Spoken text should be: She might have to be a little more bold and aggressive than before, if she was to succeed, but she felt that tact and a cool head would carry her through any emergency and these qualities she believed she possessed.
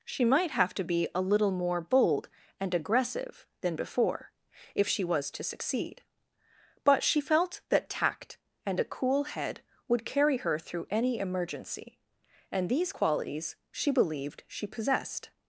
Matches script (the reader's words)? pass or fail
pass